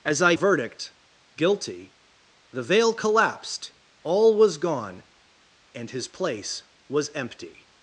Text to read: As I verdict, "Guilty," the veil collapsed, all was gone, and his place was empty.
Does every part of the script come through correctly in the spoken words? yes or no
yes